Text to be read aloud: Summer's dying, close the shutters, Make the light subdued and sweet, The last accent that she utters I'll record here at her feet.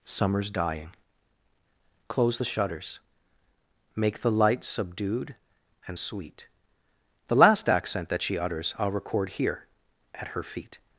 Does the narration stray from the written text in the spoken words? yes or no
no